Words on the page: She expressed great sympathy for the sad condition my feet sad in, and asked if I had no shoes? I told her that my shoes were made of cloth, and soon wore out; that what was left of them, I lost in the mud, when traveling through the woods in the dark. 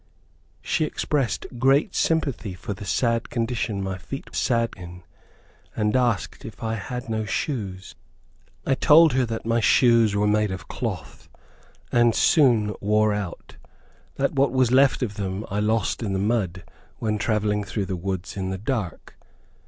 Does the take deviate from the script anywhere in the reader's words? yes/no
no